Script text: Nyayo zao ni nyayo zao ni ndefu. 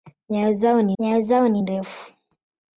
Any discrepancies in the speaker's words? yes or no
no